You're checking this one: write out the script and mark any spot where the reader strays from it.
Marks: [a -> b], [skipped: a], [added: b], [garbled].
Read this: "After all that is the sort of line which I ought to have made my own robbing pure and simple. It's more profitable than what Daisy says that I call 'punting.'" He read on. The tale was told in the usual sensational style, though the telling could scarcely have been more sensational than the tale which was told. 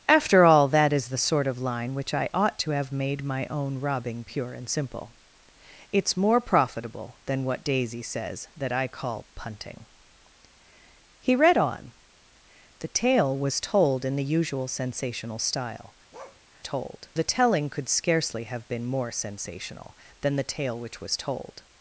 "After all that is the sort of line which I ought to have made my own robbing pure and simple. It's more profitable than what Daisy says that I call 'punting.'" He read on. The tale was told in the usual sensational style, [though -> told] the telling could scarcely have been more sensational than the tale which was told.